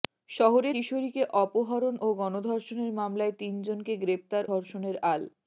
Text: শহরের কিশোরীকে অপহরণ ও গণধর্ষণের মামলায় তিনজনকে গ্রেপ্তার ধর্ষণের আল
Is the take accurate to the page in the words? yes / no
yes